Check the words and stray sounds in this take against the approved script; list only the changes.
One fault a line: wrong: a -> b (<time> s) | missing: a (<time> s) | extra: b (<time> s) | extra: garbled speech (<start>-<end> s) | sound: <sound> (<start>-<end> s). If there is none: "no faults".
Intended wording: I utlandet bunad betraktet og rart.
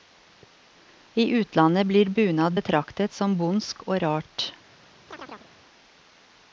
extra: blir (1.9 s)
extra: som bondsk (3.1 s)
sound: chirp (5.1-5.5 s)